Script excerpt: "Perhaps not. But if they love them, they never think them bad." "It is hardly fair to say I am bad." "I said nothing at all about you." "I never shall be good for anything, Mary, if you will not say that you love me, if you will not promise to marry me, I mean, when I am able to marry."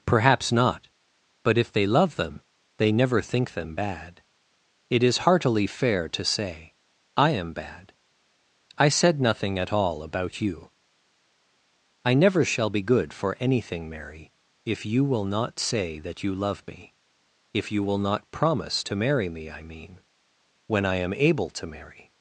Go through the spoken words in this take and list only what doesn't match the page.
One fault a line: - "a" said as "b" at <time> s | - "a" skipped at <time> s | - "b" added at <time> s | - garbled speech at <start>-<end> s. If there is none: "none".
- "hardly" said as "heartily" at 5.3 s